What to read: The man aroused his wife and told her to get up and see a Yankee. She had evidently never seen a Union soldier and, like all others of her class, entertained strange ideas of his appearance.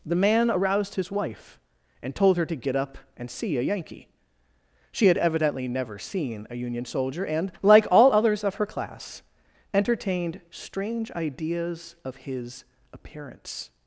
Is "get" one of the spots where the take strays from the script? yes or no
no